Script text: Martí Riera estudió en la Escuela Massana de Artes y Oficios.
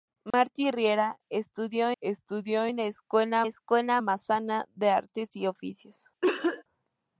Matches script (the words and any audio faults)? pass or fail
fail